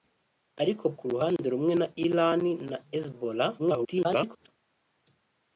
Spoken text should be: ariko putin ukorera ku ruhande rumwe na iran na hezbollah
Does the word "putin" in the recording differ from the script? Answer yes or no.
yes